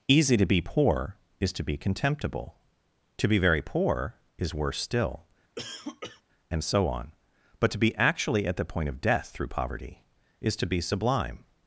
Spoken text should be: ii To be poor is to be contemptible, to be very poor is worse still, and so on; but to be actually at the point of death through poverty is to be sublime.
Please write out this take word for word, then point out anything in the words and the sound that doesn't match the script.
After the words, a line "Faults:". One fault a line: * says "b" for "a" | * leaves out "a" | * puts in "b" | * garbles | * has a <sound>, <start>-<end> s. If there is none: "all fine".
easy To be poor is to be contemptible, to be very poor is worse still, and so on; but to be actually at the point of death through poverty is to be sublime.
Faults:
* says "easy" for "ii"
* has a cough, 5.6-6.2 s